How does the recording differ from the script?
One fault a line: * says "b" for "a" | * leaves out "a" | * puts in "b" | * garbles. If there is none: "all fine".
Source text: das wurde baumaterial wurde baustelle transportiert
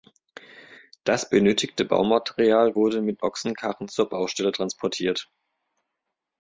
* says "benötigte" for "wurde"
* puts in "mit ochsenkarren zur"